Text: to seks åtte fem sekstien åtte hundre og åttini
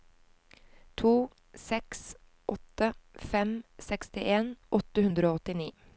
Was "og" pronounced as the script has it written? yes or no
yes